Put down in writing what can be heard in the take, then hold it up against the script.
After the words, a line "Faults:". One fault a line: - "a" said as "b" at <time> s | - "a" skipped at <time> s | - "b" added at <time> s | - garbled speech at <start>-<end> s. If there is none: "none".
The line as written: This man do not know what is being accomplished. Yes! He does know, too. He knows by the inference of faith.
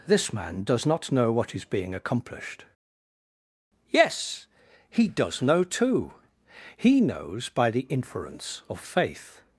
This man does not know what is being accomplished. Yes! He does know, too. He knows by the inference of faith.
Faults:
- "do" said as "does" at 0.6 s